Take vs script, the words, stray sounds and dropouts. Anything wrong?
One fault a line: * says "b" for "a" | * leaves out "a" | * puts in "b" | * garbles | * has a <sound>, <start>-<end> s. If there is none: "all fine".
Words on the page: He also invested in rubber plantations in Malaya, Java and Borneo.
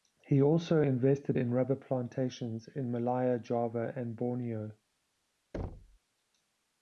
* has a thud, 5.5-6.0 s